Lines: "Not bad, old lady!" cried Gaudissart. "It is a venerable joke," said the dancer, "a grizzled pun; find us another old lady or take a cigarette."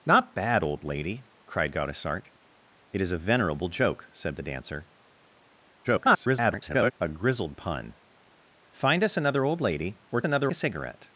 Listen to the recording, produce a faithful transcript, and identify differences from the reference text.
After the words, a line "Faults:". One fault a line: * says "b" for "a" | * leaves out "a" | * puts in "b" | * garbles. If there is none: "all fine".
"Not bad, old lady!" cried Gaudissart. "It is a venerable joke," said the dancer, [garbled] "a grizzled pun; find us another old lady or another a cigarette."
Faults:
* garbles
* says "another" for "take"